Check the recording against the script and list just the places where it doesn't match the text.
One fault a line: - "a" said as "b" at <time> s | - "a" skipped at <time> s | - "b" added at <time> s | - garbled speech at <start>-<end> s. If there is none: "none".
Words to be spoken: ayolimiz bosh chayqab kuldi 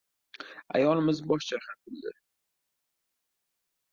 none